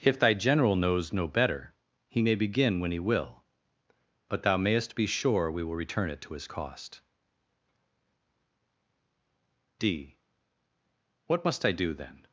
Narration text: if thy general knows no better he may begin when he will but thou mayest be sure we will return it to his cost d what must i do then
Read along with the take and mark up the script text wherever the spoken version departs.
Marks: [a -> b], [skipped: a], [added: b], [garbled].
if thy general knows no better he may begin when he will but thou mayest be sure we will return it to his cost d what must i do then